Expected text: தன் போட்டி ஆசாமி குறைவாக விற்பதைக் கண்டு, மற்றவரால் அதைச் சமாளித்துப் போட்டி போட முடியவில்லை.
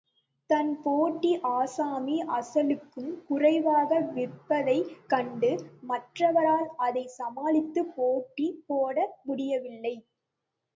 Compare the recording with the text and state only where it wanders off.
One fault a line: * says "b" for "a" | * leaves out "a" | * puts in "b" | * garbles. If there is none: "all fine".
* puts in "அசலுக்கும்"